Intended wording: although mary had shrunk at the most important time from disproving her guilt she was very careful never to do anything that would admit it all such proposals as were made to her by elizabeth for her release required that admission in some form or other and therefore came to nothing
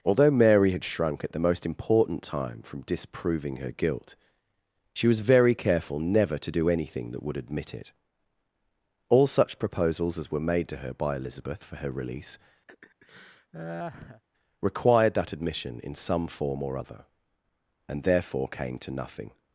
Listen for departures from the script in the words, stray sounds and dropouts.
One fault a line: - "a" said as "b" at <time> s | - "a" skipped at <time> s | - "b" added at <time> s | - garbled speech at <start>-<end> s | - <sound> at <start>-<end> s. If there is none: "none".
- laugh at 12.7-14.2 s